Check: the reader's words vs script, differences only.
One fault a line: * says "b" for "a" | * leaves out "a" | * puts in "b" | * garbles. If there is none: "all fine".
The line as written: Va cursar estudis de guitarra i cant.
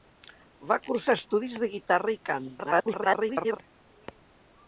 * garbles